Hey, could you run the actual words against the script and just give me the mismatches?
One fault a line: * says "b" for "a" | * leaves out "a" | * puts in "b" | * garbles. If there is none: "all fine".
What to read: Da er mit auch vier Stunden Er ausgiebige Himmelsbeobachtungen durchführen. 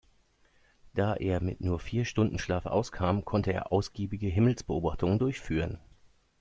* says "nur" for "auch"
* puts in "Schlaf auskam konnte"